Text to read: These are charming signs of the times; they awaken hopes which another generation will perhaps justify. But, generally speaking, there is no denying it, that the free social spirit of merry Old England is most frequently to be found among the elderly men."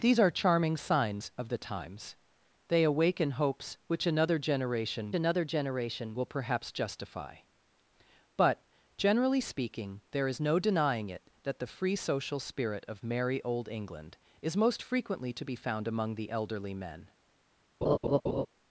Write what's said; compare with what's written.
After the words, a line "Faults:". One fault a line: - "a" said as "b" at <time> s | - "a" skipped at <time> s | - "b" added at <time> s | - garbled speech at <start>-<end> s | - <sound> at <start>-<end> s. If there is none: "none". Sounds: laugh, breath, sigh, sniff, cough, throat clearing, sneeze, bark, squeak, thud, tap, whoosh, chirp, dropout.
These are charming signs of the times; they awaken hopes which another generation another generation will perhaps justify. But, generally speaking, there is no denying it, that the free social spirit of merry Old England is most frequently to be found among the elderly men."
Faults:
- "another generation" added at 5.1 s
- laugh at 17.8-18.5 s